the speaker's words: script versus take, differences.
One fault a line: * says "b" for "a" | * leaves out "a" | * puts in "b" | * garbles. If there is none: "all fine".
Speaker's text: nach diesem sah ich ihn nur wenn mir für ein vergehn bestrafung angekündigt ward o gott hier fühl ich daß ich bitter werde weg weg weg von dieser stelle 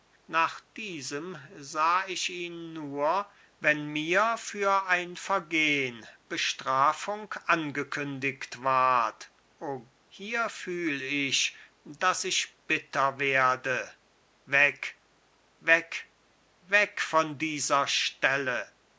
* leaves out "gott"